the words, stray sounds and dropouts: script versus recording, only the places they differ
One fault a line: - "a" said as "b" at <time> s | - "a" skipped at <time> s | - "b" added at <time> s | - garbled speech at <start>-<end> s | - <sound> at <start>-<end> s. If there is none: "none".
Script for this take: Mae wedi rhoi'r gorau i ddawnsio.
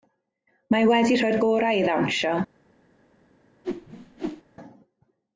- whoosh at 3.6-4.4 s